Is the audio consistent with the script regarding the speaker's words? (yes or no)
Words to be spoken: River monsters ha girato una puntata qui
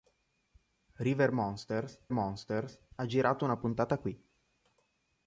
no